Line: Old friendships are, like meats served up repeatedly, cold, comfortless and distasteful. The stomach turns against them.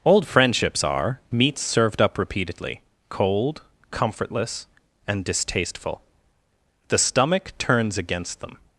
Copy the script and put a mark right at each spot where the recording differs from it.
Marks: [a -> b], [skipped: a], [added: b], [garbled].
Old friendships are, [skipped: like] meats served up repeatedly, cold, comfortless and distasteful. The stomach turns against them.